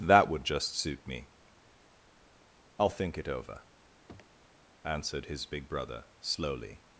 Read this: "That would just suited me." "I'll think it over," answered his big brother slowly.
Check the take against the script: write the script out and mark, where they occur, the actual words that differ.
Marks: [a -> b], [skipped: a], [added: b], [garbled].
"That would just [suited -> suit] me." "I'll think it over," answered his big brother slowly.